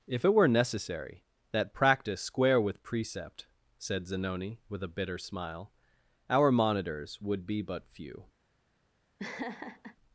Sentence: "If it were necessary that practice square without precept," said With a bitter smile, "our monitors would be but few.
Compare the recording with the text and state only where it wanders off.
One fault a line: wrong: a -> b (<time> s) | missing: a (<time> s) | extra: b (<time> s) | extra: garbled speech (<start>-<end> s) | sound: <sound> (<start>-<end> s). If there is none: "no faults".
wrong: without -> with (2.6 s)
extra: Zanoni (4.1 s)
sound: laugh (9.2-10.0 s)